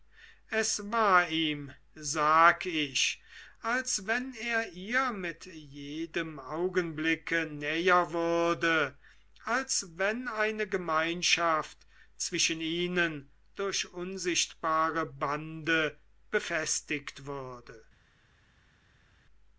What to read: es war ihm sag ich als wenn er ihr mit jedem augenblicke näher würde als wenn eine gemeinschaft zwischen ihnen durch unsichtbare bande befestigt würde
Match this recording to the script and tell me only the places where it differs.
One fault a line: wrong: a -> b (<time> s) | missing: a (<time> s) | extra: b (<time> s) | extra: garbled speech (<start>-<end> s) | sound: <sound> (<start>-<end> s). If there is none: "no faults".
no faults